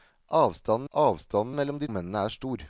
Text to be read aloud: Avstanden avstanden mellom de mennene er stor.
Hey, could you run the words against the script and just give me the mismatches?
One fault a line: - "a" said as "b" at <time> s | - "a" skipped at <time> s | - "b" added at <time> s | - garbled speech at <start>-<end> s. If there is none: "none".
none